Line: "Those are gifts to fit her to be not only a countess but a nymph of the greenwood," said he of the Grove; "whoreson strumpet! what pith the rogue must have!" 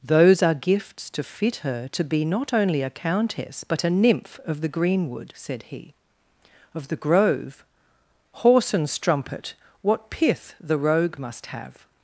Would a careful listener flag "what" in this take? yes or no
no